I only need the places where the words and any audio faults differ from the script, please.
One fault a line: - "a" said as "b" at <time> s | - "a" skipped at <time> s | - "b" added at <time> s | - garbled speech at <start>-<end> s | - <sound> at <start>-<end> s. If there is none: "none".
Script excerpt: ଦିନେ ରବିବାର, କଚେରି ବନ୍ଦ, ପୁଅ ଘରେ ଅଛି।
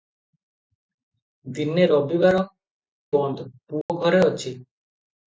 - "କଚେରି" skipped at 2.4 s
- dropout at 3.8-3.9 s